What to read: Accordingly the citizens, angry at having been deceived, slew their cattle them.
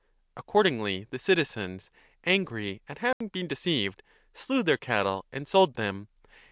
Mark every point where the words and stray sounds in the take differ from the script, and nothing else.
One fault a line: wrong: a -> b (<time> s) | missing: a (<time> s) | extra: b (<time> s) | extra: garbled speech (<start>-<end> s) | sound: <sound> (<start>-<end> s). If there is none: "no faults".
sound: dropout (3.1-3.2 s)
extra: and sold (5.3 s)